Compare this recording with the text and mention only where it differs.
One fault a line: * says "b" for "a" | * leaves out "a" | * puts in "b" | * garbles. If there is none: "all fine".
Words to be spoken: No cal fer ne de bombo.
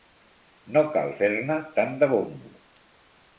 * puts in "tant"